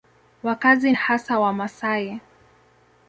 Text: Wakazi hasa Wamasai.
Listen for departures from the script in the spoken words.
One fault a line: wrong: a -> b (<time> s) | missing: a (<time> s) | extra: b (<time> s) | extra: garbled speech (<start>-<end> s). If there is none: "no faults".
no faults